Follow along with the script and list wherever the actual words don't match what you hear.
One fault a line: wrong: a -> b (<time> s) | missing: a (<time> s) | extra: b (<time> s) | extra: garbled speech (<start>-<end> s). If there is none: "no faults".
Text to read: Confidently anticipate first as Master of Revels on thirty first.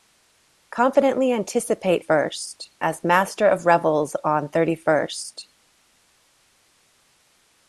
no faults